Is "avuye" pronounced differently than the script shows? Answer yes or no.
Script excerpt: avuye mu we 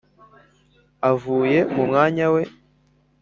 no